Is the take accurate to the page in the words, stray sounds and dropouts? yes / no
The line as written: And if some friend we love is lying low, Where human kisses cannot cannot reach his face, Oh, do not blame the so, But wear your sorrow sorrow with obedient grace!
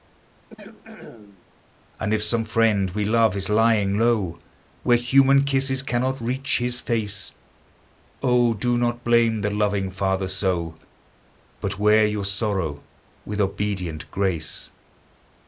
no